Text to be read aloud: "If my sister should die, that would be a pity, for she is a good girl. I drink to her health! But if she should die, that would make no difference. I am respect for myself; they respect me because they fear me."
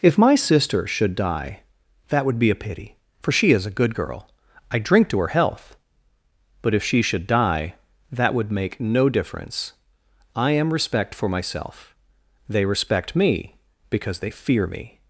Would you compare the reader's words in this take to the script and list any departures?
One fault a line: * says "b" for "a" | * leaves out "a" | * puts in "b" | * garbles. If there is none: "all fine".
all fine